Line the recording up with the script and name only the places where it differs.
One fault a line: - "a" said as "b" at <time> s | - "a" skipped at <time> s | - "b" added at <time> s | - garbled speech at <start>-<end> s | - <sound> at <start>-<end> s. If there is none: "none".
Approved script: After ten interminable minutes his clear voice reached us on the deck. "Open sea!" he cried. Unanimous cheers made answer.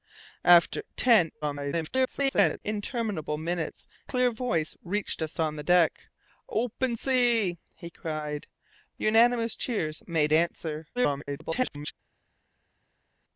- garbled speech at 1.4-2.6 s
- "his" skipped at 3.9 s
- garbled speech at 11.0-11.9 s